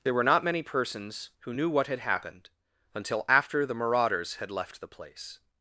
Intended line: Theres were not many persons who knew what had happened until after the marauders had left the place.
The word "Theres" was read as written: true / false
false